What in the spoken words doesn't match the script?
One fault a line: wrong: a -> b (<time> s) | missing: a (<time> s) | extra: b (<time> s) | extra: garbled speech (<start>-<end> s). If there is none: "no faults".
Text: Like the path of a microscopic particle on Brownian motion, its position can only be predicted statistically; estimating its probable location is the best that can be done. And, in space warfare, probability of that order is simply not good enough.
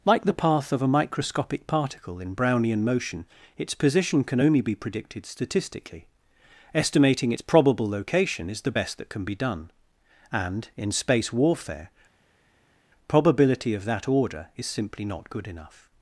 wrong: on -> in (2.2 s)